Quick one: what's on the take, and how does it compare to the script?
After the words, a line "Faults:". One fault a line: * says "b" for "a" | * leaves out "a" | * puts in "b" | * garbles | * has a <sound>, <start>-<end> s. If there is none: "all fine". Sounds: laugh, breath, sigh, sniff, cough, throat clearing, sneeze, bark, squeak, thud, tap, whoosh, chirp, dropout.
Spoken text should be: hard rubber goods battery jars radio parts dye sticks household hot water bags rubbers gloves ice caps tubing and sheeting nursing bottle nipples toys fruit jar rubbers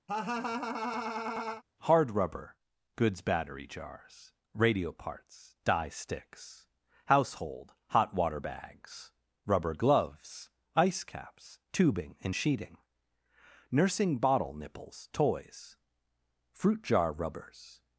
hard rubber goods battery jars radio parts dye sticks household hot water bags rubber gloves ice caps tubing and sheeting nursing bottle nipples toys fruit jar rubbers
Faults:
* has a laugh, 0.1-1.6 s
* says "rubber" for "rubbers"